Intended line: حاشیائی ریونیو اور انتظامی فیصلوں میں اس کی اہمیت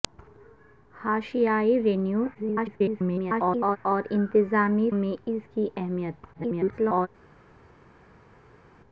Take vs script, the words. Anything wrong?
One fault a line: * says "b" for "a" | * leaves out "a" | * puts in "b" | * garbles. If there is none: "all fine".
* garbles
* leaves out "فیصلوں"
* garbles